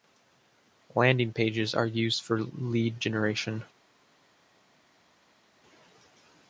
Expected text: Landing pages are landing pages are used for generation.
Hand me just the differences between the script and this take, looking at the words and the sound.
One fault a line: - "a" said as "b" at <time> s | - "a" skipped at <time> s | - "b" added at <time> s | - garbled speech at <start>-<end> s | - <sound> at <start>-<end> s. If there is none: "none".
- "landing pages are" skipped at 1.9 s
- "lead" added at 2.4 s